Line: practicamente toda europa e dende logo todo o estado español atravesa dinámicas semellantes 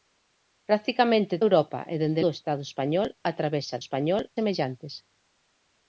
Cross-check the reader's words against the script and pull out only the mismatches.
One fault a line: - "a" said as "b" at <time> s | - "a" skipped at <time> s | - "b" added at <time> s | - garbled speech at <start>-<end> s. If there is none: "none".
- "toda" skipped at 1.4 s
- "logo todo" skipped at 2.2 s
- "dinámicas" said as "español" at 3.8 s